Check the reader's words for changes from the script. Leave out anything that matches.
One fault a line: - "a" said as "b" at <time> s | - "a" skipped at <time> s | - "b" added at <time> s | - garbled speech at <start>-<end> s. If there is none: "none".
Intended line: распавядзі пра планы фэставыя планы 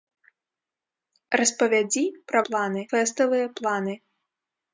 none